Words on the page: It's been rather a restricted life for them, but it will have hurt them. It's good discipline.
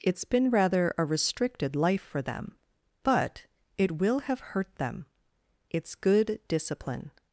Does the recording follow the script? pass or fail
pass